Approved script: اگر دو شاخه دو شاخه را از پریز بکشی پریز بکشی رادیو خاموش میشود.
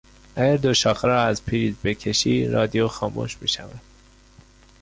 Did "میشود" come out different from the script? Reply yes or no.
no